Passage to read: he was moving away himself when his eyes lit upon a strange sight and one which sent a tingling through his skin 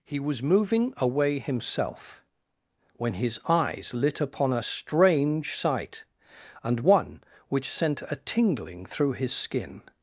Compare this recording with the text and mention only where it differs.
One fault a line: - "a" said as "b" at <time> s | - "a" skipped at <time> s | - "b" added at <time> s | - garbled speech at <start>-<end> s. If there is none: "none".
none